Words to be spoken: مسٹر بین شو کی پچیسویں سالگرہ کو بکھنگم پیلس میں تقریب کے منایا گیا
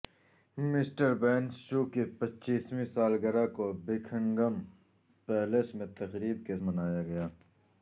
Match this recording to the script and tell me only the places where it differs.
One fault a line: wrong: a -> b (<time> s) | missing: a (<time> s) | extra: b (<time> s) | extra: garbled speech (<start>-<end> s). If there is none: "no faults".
no faults